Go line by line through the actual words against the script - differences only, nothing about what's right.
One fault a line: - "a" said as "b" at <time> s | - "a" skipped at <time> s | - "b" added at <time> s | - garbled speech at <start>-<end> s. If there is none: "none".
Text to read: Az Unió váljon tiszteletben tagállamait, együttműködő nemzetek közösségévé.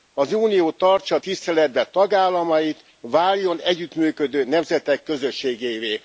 - "váljon" said as "tartsa" at 0.7 s
- "váljon" added at 3.0 s